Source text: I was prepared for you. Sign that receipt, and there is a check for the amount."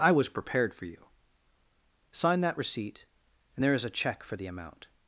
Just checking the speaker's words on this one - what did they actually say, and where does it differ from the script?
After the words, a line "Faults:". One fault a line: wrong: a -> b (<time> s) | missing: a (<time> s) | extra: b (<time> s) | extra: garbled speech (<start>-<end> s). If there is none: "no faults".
I was prepared for you. Sign that receipt, and there is a check for the amount."
Faults:
no faults